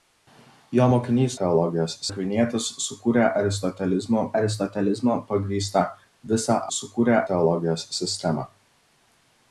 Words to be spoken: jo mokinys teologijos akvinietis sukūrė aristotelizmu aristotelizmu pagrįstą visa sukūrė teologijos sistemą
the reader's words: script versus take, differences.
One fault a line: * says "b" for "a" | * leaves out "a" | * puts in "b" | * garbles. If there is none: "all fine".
all fine